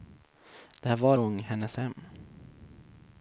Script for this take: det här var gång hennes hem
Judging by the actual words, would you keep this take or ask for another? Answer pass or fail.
pass